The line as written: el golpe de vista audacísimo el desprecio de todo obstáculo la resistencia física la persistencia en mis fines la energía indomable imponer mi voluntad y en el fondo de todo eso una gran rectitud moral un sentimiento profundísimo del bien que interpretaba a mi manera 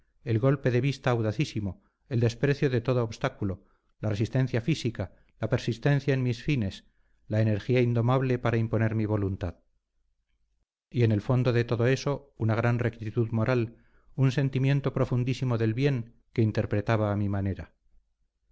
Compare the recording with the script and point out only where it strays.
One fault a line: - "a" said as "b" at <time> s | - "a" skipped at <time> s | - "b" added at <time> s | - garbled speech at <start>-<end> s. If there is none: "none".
- "para" added at 8.4 s